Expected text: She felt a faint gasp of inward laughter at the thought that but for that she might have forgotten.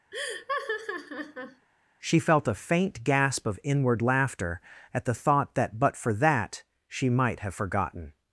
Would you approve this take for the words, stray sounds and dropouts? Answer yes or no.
no